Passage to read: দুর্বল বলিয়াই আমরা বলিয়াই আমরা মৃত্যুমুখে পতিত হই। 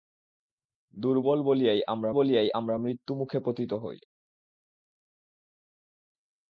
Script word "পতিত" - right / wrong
right